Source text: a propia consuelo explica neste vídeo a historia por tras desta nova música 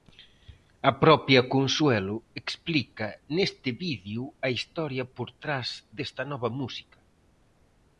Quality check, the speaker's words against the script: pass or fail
pass